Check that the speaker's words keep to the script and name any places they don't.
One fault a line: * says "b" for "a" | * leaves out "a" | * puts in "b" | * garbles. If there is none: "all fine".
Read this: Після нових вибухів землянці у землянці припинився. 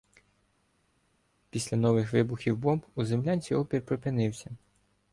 * says "бомб" for "землянці"
* puts in "опір"